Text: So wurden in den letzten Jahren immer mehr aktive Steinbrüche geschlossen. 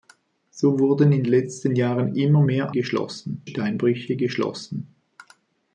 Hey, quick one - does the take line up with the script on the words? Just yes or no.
no